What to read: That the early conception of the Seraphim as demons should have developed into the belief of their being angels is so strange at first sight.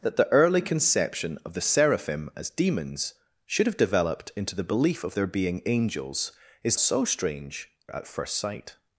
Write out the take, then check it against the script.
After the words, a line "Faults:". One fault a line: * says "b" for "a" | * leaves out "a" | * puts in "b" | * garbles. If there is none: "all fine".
That the early conception of the Seraphim as demons should have developed into the belief of their being angels is so strange at first sight.
Faults:
all fine